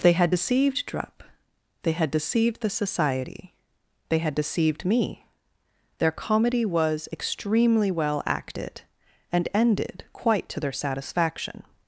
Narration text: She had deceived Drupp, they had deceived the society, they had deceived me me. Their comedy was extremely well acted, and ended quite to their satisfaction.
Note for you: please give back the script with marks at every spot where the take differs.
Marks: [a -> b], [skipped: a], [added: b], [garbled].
[She -> They] had deceived Drupp, they had deceived the society, they had deceived me [skipped: me.] Their comedy was extremely well acted, and ended quite to their satisfaction.